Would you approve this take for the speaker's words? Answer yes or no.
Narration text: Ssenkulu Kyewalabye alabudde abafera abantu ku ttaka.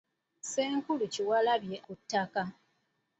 no